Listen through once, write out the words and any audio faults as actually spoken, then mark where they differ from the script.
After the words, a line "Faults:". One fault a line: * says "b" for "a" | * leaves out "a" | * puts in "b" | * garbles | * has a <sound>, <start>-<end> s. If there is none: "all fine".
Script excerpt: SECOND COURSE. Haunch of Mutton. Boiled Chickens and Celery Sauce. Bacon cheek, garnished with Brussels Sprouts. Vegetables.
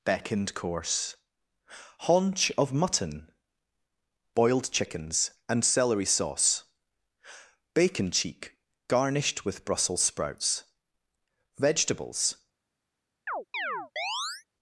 Beckoned COURSE. Haunch of Mutton. Boiled Chickens and Celery Sauce. Bacon cheek, garnished with Brussels Sprouts. Vegetables.
Faults:
* says "Beckoned" for "SECOND"
* has a chirp, 13.3-14.4 s